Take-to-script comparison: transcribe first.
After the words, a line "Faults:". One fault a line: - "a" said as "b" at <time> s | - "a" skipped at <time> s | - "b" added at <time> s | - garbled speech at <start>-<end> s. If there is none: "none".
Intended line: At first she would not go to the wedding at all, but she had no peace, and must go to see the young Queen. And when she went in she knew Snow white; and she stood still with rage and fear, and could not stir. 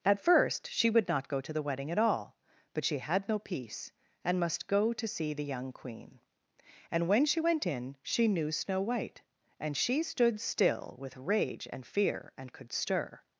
At first she would not go to the wedding at all, but she had no peace, and must go to see the young Queen. And when she went in she knew Snow white; and she stood still with rage and fear, and could stir.
Faults:
- "not" skipped at 12.7 s